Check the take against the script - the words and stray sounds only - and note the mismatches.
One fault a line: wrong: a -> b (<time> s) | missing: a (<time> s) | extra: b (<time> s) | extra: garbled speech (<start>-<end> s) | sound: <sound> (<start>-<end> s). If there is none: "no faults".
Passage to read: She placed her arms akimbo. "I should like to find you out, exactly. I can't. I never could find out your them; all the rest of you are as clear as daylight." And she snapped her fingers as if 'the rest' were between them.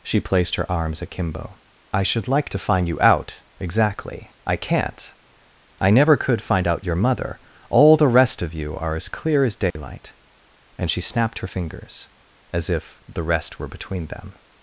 wrong: them -> mother (7.0 s)
sound: dropout (9.7-9.8 s)